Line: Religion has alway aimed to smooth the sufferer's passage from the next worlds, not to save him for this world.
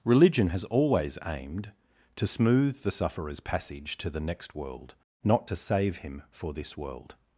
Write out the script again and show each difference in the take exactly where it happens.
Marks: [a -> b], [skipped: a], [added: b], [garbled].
Religion has [alway -> always] aimed to smooth the sufferer's passage [from -> to] the next [worlds, -> world] not to save him for this world.